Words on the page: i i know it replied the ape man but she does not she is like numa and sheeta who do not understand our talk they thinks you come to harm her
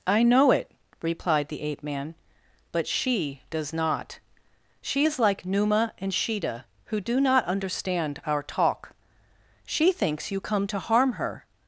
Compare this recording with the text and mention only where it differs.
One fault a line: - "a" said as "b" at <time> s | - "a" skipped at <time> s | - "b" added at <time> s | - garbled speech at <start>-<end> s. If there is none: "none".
- "i" skipped at 0.2 s
- "they" said as "she" at 9.6 s